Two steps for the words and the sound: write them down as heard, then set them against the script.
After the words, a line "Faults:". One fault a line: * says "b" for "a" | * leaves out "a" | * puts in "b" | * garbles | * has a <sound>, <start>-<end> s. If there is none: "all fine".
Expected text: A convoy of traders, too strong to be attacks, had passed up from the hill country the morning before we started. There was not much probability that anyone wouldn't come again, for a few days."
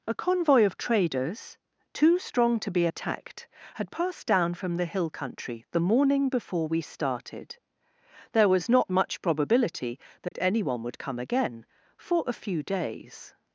A convoy of traders, too strong to be attacked, had passed down from the hill country the morning before we started. There was not much probability that anyone would come again, for a few days."
Faults:
* says "attacked" for "attacks"
* says "down" for "up"
* has a dropout, 10.3-10.3 s
* says "would" for "wouldn't"